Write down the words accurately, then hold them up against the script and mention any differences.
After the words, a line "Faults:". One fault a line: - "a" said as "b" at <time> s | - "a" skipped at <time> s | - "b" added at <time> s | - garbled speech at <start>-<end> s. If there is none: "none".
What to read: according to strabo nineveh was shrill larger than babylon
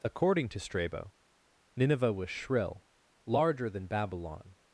according to strabo nineveh was shrill larger than babylon
Faults:
none